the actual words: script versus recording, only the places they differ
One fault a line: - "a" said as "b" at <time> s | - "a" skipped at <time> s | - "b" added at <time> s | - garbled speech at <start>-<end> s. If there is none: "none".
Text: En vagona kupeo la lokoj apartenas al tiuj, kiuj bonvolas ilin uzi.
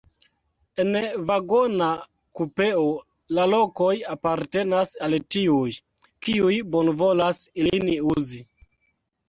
none